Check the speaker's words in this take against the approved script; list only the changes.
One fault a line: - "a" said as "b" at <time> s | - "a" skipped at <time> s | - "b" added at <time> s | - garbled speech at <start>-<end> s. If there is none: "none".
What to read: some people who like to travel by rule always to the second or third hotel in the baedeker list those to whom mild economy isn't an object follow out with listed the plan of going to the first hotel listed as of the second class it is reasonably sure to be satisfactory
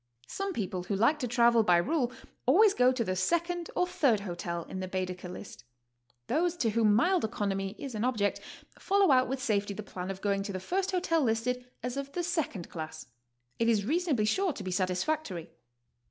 - "go" added at 2.7 s
- "isn't" said as "is" at 7.8 s
- "listed" said as "safety" at 9.4 s